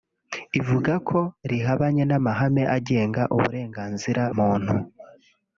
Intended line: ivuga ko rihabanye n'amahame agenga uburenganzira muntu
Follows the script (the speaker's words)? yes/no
yes